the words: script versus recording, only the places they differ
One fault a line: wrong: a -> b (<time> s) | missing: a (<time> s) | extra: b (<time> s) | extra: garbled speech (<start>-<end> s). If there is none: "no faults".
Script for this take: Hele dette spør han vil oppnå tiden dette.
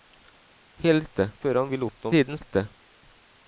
no faults